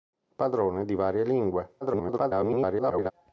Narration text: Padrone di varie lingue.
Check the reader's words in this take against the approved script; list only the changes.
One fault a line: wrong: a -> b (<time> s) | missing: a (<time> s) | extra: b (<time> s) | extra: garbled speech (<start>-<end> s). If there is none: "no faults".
extra: garbled speech (1.8-3.1 s)